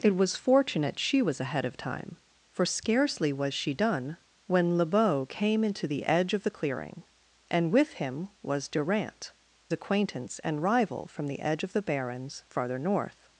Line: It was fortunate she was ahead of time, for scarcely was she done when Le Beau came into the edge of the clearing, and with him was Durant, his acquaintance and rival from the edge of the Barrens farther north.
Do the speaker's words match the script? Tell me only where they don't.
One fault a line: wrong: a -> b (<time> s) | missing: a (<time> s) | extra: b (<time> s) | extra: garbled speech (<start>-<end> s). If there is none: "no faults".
missing: his (9.3 s)